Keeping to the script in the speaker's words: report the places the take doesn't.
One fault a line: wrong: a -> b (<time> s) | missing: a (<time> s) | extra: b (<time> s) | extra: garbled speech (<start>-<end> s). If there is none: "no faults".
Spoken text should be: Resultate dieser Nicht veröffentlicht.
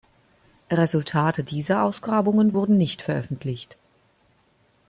extra: Ausgrabungen wurden (1.8 s)